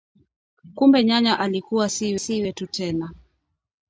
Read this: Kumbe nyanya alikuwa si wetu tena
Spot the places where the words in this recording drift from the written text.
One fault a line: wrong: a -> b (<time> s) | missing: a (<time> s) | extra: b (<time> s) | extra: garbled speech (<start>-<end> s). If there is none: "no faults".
extra: si (2.2 s)